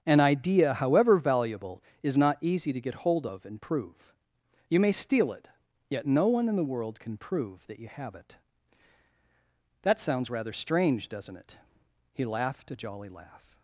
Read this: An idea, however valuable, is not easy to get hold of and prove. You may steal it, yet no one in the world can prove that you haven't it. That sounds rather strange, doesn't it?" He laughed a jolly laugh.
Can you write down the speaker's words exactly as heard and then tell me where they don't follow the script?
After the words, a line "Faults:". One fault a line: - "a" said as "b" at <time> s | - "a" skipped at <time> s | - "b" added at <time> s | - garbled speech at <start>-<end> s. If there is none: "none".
An idea, however valuable, is not easy to get hold of and prove. You may steal it, yet no one in the world can prove that you have it. That sounds rather strange, doesn't it?" He laughed a jolly laugh.
Faults:
- "haven't" said as "have" at 7.9 s